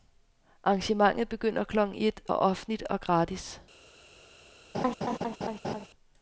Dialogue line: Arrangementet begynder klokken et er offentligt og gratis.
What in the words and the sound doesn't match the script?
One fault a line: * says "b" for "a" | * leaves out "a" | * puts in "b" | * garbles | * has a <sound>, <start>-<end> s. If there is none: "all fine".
* has a laugh, 4.7-5.9 s